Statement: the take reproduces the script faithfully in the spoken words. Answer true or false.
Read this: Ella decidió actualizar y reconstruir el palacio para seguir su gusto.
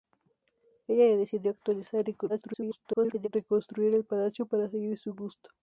false